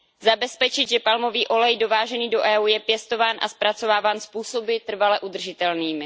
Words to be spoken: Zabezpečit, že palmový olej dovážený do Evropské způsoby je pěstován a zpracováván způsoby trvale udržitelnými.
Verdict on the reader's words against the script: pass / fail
fail